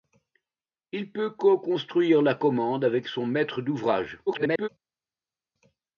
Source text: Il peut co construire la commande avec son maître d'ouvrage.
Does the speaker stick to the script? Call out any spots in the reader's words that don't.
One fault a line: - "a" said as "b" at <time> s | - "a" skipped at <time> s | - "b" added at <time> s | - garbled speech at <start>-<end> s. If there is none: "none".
- garbled speech at 4.3-4.7 s